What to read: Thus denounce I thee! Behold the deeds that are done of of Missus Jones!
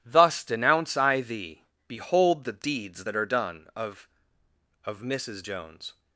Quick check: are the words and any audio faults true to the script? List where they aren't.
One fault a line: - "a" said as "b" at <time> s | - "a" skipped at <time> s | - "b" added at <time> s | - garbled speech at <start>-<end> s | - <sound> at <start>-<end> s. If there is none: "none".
none